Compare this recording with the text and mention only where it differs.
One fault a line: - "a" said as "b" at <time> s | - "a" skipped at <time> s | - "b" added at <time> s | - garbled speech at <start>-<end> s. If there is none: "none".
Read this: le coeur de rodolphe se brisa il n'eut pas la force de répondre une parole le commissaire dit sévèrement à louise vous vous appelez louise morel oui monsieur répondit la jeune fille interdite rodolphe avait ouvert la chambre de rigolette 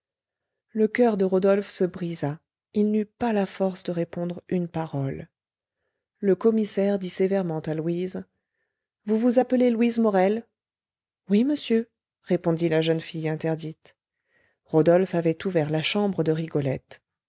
none